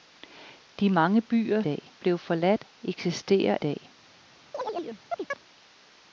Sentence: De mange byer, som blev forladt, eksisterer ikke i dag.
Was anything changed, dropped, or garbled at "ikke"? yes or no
yes